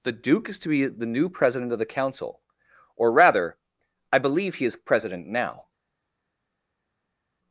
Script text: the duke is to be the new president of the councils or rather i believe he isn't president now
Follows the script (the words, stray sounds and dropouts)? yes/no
no